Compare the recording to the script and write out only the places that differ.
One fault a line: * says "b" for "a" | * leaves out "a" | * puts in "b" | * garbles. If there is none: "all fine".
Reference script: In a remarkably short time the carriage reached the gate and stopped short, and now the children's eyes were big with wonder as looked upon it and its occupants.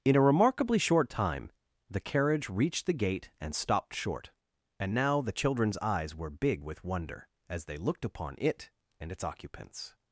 * puts in "they"